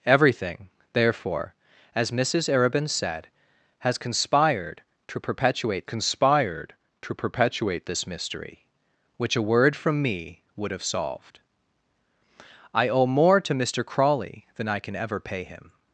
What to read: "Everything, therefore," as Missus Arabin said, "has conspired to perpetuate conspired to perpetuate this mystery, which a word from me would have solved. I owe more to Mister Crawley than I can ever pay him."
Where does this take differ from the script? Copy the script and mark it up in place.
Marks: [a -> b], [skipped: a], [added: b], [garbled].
"Everything, therefore," as Missus Arabin said, "has conspired to perpetuate conspired to perpetuate this mystery, which a word from me would have solved. I owe more to Mister Crawley than I can ever pay him."